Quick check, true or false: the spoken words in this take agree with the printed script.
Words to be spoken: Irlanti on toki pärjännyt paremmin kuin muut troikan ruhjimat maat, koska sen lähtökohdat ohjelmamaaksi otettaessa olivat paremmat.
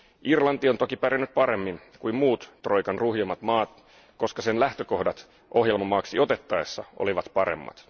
true